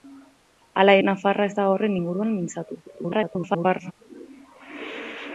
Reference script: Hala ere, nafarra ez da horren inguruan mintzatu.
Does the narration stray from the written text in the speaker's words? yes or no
yes